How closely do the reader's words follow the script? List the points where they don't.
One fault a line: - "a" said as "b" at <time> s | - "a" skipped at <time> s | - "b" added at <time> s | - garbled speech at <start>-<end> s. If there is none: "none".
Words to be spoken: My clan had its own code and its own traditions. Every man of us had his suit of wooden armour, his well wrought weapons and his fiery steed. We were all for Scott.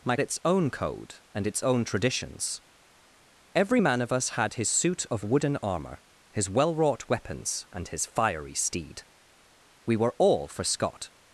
- "clan had" skipped at 0.1 s